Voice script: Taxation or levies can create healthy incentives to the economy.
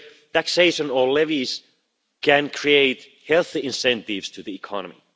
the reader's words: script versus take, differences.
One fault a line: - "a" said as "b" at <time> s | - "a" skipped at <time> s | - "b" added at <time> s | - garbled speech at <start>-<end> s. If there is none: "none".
none